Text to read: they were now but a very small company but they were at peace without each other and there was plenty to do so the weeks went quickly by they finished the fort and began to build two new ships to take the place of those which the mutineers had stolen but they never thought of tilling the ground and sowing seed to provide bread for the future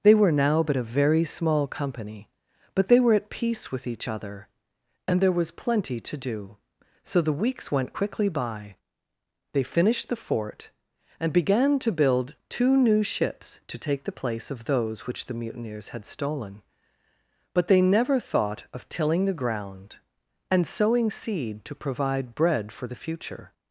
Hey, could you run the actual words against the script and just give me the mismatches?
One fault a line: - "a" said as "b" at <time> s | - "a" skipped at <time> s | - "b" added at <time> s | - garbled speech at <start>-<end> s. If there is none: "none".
- "without" said as "with" at 3.7 s